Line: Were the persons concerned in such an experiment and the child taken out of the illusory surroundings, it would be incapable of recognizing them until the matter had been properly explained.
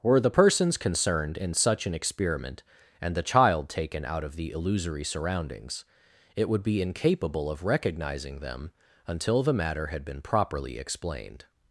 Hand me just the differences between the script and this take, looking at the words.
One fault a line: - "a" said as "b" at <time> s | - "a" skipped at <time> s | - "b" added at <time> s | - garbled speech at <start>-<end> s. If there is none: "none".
none